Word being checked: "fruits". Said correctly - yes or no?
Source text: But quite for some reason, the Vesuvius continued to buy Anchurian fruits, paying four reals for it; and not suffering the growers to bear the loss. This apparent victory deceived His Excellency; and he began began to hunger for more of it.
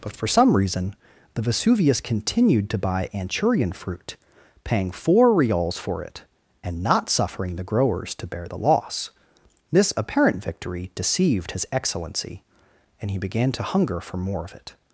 no